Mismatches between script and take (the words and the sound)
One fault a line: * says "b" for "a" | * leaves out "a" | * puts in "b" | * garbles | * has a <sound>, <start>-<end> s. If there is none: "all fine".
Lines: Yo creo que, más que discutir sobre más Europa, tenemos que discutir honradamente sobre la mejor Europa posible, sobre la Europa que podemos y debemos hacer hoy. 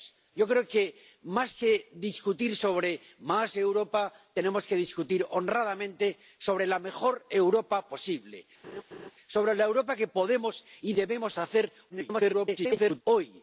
* has a laugh, 8.6-9.1 s
* garbles